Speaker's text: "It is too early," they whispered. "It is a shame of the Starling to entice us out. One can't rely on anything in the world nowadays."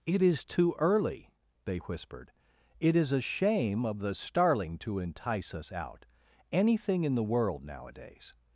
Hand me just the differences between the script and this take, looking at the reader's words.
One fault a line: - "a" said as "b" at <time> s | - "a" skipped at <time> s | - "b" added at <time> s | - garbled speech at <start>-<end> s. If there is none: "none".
- "One can't rely on" skipped at 6.1 s